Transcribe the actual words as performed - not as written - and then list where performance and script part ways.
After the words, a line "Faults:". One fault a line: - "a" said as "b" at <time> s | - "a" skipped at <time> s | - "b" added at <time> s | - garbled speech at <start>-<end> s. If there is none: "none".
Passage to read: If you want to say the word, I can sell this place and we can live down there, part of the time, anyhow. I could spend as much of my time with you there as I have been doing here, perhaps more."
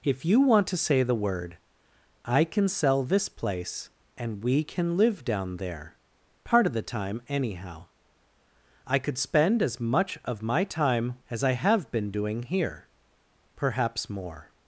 If you want to say the word, I can sell this place and we can live down there, part of the time, anyhow. I could spend as much of my time as I have been doing here, perhaps more."
Faults:
- "with you there" skipped at 11.2 s